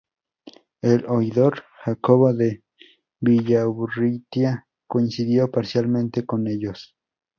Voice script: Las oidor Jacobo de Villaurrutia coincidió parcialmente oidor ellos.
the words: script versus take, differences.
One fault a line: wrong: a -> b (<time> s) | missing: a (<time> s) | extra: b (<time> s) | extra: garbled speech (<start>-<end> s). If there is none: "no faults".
wrong: Las -> El (0.8 s)
wrong: oidor -> con (6.3 s)